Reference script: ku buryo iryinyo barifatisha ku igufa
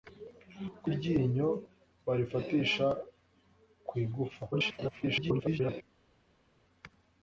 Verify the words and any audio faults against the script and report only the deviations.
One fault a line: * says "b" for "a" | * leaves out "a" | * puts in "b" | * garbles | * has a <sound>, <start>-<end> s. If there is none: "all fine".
* leaves out "buryo"
* garbles